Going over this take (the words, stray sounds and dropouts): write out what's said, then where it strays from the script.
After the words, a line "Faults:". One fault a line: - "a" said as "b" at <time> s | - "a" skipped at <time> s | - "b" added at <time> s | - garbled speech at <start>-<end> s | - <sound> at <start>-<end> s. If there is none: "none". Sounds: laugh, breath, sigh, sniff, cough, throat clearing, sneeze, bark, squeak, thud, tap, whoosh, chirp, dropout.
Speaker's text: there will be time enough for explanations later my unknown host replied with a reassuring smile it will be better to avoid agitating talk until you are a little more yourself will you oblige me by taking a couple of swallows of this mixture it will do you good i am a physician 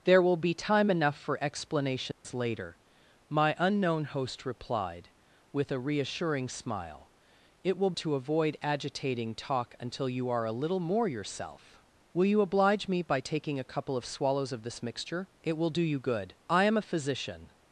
there will be time enough for explanations later my unknown host replied with a reassuring smile it will to avoid agitating talk until you are a little more yourself will you oblige me by taking a couple of swallows of this mixture it will do you good i am a physician
Faults:
- dropout at 2.1-2.2 s
- "be better" skipped at 7.9 s